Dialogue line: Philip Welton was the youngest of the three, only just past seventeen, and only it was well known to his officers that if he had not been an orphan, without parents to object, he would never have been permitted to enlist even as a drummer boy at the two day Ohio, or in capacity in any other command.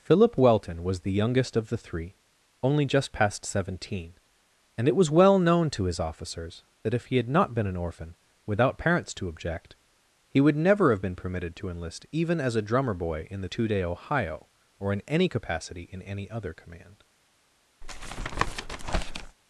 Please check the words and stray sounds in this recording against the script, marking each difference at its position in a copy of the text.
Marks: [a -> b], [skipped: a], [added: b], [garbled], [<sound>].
Philip Welton was the youngest of the three, only just past seventeen, and [skipped: only] it was well known to his officers that if he had not been an orphan, without parents to object, he would never have been permitted to enlist even as a drummer boy [at -> in] the two day Ohio, or in [added: any] capacity in any other command. [tap]